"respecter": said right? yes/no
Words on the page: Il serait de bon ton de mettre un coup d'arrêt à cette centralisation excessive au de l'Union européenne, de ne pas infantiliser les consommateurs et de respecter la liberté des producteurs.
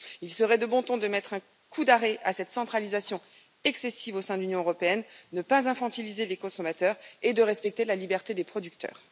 yes